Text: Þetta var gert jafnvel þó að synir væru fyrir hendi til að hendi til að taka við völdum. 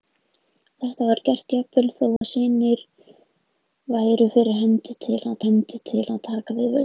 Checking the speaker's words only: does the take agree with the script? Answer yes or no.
yes